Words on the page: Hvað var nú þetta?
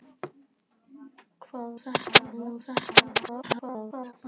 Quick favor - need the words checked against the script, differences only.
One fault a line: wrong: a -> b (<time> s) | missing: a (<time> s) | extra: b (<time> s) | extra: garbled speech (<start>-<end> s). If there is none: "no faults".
wrong: var -> þetta (1.8 s)
extra: garbled speech (3.2-4.1 s)